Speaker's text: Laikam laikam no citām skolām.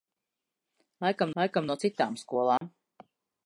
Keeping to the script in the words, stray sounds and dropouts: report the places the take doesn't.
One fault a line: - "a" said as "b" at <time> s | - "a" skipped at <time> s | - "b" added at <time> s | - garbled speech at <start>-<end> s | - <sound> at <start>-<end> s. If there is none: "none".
- dropout at 2.6-2.6 s